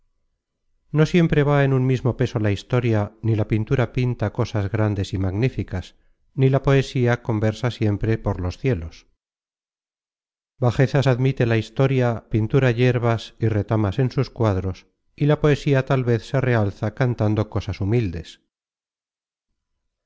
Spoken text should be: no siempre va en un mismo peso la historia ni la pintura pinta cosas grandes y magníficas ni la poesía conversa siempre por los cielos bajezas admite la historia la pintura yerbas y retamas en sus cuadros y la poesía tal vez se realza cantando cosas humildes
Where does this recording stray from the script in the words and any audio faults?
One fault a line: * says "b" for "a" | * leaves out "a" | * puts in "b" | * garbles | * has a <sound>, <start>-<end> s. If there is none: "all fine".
* leaves out "la"